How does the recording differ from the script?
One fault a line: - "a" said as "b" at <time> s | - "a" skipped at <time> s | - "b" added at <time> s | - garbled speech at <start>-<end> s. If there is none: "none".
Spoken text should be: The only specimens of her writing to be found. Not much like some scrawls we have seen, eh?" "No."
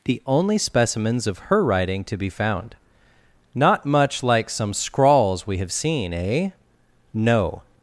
none